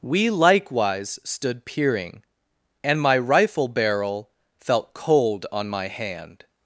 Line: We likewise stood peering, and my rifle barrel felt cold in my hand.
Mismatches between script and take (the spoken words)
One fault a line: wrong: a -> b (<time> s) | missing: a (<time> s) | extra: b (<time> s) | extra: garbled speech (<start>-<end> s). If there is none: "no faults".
wrong: in -> on (5.5 s)